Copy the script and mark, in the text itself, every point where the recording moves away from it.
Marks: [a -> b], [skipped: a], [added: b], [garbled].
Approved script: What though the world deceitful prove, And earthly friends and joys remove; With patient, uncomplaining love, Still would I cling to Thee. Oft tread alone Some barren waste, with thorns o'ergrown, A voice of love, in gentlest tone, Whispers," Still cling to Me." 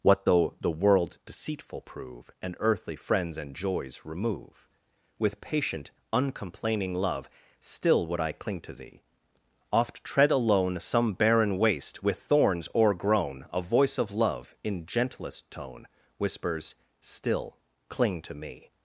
What though the world deceitful prove, And earthly friends and joys remove; With patient, uncomplaining love, Still would I cling to Thee. Oft tread alone Some barren waste, with thorns o'ergrown, A voice of love, in gentlest tone, Whispers," Still cling to Me."